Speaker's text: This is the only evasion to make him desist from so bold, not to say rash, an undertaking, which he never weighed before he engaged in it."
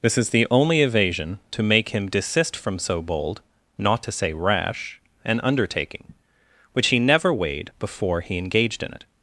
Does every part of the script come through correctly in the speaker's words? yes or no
yes